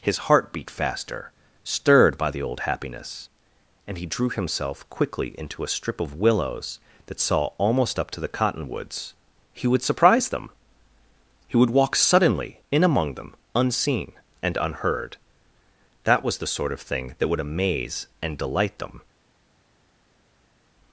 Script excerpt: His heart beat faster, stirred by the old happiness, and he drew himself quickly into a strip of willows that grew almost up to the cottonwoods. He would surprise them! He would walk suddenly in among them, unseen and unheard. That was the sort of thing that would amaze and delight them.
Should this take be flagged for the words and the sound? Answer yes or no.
yes